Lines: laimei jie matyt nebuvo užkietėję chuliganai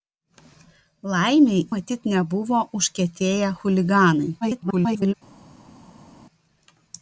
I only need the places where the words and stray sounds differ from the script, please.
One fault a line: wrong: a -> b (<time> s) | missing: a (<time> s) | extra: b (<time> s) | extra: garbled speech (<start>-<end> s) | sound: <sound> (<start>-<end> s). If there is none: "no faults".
missing: jie (1.6 s)
extra: garbled speech (4.4-5.1 s)